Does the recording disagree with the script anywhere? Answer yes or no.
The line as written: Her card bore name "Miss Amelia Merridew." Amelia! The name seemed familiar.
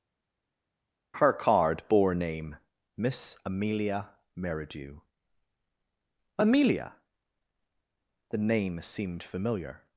no